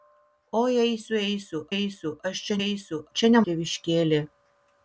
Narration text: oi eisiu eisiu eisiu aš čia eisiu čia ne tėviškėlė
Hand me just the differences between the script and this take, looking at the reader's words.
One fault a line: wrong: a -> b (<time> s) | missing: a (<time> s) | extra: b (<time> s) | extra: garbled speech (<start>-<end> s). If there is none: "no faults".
no faults